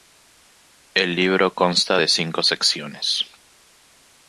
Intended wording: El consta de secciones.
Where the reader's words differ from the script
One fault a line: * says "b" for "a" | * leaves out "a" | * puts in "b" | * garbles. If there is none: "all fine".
* puts in "libro"
* puts in "cinco"